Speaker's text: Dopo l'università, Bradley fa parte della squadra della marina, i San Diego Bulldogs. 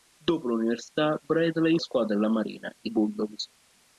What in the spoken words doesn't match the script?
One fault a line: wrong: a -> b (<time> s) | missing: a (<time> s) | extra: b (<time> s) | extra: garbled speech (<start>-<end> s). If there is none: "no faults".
missing: fa parte della (1.8 s)
missing: San Diego (2.9 s)